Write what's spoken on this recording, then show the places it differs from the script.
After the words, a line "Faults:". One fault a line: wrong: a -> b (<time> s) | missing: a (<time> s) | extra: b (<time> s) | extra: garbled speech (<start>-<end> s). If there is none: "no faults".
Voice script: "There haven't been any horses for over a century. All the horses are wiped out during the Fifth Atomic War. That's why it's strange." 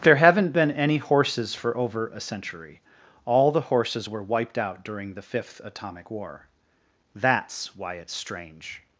"There haven't been any horses for over a century. All the horses were wiped out during the Fifth Atomic War. That's why it's strange."
Faults:
wrong: are -> were (4.1 s)